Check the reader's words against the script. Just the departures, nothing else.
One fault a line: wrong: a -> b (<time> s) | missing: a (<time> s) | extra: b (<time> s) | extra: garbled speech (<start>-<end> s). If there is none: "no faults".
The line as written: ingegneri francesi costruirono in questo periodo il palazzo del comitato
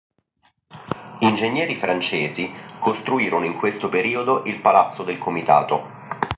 no faults